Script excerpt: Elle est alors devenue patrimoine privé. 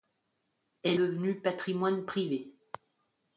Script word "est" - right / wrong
wrong